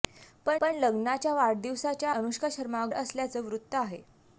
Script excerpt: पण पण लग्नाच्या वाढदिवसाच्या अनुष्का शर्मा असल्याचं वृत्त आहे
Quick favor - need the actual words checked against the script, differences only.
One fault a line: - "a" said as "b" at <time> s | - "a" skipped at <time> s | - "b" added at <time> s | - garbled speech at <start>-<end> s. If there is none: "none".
none